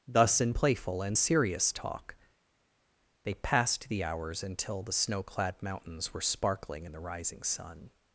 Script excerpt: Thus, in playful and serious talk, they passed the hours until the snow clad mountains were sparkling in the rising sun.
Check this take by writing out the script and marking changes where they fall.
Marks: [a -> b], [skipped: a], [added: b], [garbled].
Thus, in playful and serious talk, they passed the hours until the snow clad mountains were sparkling in the rising sun.